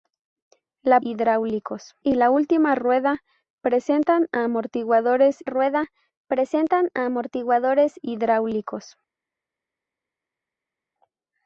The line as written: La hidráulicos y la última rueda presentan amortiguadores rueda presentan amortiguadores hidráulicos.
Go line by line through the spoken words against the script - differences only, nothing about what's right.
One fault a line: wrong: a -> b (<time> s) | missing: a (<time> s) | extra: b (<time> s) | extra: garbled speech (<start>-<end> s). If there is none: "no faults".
no faults